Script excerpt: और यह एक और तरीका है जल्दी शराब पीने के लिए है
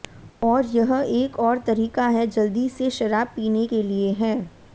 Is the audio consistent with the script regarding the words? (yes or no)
no